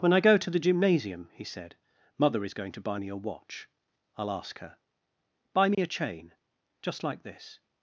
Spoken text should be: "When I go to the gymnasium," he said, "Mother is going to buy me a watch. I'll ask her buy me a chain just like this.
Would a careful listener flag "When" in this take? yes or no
no